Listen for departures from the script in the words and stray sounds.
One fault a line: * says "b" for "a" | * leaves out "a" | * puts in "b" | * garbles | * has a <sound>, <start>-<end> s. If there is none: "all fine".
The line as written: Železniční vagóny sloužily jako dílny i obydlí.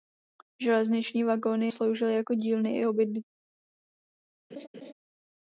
* has a laugh, 4.5-4.9 s